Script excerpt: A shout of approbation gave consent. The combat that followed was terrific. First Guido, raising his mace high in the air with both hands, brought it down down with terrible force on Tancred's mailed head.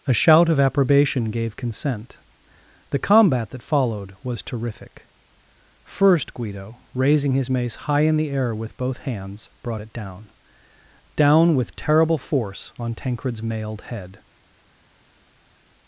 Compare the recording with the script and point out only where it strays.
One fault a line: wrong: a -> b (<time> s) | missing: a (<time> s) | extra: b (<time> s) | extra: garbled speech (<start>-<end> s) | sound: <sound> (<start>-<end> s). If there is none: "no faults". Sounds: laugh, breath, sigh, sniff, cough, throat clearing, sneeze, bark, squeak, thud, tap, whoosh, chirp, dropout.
no faults